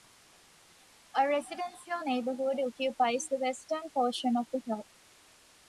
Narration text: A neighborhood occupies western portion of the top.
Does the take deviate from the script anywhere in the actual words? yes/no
yes